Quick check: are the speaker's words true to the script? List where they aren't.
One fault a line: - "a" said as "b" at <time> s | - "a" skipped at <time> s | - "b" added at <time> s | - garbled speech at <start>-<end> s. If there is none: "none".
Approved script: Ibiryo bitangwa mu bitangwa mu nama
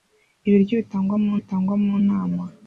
none